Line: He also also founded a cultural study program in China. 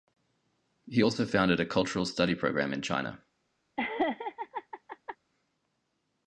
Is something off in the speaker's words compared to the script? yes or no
yes